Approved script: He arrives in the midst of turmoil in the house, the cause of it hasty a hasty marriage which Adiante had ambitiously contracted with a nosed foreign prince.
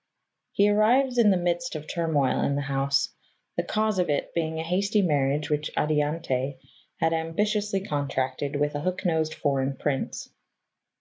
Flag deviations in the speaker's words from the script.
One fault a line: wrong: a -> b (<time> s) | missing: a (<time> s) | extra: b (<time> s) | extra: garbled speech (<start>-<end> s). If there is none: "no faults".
wrong: hasty -> being (4.3 s)
extra: hook (8.8 s)